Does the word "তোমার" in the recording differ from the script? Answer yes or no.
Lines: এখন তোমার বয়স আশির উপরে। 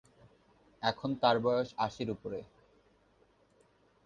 yes